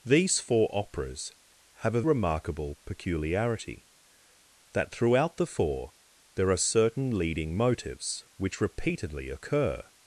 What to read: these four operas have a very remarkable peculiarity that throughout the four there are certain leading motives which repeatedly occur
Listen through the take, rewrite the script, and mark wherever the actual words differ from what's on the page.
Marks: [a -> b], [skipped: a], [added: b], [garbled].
these four operas have a [skipped: very] remarkable peculiarity that throughout the four there are certain leading motives which repeatedly occur